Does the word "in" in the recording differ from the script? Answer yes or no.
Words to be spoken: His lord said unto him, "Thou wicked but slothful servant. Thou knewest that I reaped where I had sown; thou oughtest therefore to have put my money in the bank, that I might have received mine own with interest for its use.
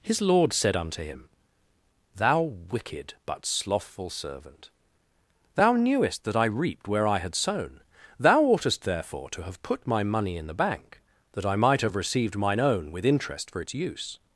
no